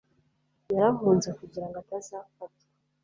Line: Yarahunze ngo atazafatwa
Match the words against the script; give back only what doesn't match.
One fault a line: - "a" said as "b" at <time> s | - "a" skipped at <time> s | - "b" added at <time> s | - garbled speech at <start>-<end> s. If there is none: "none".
- "kugira" added at 1.4 s